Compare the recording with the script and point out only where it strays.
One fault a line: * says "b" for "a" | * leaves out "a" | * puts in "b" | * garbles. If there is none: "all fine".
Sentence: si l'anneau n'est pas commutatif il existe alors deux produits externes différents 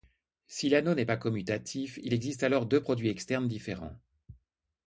all fine